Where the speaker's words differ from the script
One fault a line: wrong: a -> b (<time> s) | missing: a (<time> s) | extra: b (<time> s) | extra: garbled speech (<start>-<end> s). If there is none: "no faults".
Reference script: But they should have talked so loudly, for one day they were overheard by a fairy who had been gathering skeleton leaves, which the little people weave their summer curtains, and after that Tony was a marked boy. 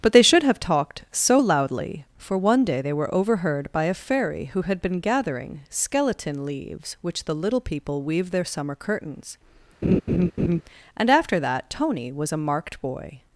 no faults